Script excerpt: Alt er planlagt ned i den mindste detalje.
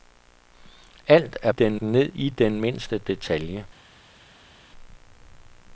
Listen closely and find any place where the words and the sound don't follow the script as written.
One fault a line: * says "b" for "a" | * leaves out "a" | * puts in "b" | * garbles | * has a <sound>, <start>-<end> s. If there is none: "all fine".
* says "den" for "planlagt"